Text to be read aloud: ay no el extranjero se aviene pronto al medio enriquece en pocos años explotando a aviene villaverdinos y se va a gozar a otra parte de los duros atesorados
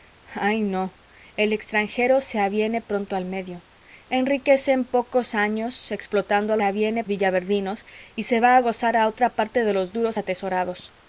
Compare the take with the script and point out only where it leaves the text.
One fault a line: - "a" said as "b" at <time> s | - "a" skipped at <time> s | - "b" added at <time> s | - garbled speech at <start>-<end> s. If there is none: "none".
none